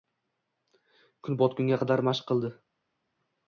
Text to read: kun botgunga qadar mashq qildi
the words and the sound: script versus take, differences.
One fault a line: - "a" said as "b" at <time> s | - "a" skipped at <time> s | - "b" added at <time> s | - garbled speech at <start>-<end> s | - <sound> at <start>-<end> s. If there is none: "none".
none